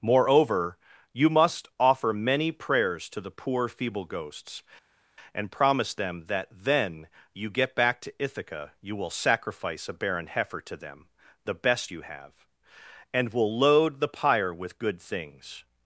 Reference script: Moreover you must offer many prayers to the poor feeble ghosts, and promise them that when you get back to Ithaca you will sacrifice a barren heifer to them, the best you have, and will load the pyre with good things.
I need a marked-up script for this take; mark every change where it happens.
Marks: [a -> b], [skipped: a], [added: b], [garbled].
Moreover you must offer many prayers to the poor feeble ghosts, and promise them that [when -> then] you get back to Ithaca you will sacrifice a barren heifer to them, the best you have, and will load the pyre with good things.